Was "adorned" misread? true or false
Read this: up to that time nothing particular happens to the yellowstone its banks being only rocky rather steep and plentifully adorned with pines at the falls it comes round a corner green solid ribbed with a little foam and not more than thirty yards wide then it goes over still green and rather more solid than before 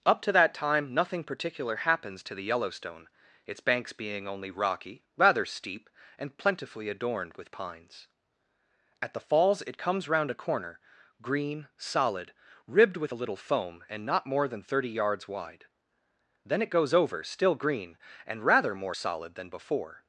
false